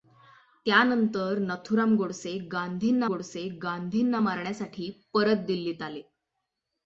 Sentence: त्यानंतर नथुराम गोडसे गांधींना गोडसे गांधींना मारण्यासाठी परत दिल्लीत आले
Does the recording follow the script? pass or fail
pass